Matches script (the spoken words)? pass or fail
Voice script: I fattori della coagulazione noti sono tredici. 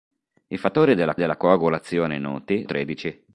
fail